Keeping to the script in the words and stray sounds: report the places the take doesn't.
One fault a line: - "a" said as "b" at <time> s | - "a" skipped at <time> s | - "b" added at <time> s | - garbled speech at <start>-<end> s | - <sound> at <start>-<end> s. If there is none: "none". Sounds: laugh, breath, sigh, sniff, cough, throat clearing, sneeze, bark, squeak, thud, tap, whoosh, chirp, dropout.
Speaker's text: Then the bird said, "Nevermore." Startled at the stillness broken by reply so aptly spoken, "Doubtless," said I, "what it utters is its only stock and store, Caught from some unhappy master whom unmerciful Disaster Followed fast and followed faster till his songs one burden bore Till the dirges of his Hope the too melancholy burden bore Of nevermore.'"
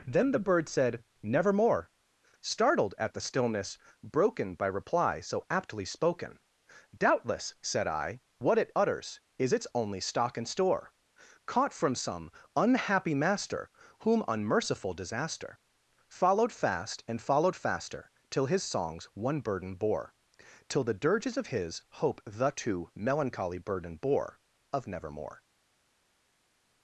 none